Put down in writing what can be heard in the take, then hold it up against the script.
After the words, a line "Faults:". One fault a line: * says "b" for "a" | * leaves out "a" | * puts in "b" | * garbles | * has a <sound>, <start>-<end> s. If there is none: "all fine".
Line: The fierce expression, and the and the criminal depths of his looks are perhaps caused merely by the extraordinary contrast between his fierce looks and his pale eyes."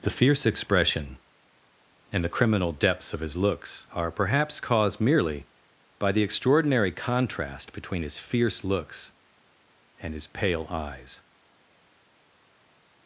The fierce expression, and the criminal depths of his looks are perhaps caused merely by the extraordinary contrast between his fierce looks and his pale eyes."
Faults:
* leaves out "and the"